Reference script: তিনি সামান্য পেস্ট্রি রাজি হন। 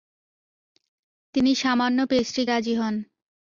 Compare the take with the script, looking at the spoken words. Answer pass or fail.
pass